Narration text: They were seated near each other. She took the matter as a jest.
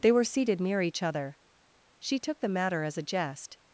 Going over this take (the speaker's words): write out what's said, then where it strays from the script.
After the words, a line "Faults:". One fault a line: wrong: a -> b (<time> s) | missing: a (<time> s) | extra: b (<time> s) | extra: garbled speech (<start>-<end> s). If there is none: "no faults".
They were seated near each other. She took the matter as a jest.
Faults:
no faults